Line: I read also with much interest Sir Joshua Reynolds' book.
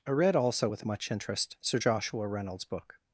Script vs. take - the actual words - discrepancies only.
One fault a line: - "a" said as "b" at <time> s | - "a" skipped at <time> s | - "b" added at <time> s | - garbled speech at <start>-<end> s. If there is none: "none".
none